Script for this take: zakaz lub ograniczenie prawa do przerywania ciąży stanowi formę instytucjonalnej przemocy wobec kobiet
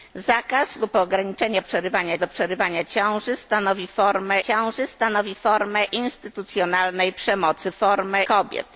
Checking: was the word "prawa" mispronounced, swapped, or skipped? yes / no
yes